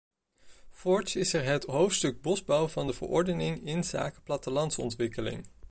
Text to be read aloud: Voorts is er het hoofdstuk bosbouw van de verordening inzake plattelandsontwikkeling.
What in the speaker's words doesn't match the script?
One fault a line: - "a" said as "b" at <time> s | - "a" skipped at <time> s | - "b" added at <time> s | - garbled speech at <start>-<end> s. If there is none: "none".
none